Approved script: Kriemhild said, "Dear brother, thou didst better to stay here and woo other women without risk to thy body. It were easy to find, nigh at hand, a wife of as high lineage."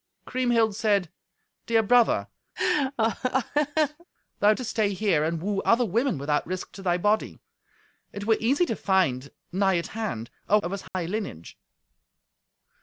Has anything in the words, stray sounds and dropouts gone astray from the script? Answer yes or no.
yes